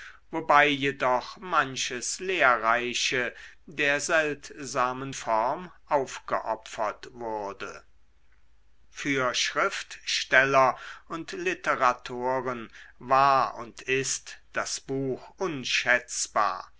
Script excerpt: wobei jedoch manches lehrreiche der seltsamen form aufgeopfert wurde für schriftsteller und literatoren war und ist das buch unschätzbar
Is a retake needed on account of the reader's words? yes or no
no